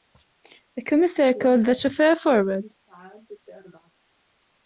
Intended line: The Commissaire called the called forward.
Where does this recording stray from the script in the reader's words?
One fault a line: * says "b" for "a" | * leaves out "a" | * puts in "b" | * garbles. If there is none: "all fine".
* says "chauffeur" for "called"